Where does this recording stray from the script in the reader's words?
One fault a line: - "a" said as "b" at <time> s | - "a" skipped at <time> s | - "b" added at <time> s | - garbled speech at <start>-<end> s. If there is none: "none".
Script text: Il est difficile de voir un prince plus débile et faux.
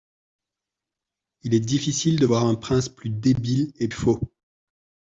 none